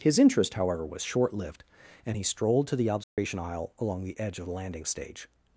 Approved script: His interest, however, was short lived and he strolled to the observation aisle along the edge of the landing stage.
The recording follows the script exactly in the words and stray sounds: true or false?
false